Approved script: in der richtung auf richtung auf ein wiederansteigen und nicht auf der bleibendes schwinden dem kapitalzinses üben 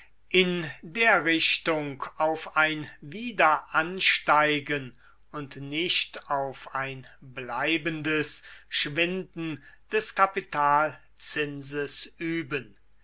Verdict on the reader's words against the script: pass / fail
fail